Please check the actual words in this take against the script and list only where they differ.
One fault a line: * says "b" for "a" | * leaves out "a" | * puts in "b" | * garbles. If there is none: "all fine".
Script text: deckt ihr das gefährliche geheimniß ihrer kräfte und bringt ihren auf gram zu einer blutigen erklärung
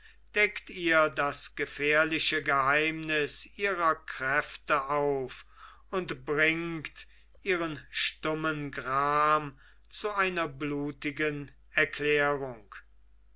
* puts in "auf"
* says "stummen" for "auf"